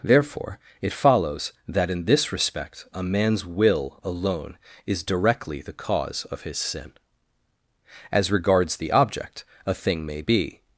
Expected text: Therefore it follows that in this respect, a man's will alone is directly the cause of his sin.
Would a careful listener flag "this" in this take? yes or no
no